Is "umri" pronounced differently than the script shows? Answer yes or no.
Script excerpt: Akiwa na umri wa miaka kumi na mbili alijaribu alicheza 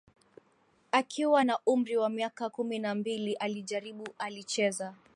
no